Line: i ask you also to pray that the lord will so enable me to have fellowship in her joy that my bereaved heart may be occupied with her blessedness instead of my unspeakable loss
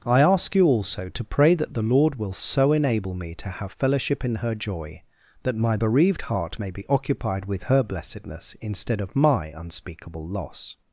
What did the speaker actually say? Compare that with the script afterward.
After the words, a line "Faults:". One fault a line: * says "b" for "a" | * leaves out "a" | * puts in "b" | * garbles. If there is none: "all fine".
i ask you also to pray that the lord will so enable me to have fellowship in her joy that my bereaved heart may be occupied with her blessedness instead of my unspeakable loss
Faults:
all fine